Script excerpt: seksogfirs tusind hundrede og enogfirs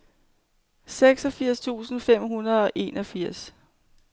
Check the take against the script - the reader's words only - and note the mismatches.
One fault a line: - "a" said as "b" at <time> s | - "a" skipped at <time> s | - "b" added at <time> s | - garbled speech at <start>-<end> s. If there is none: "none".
- "fem" added at 2.0 s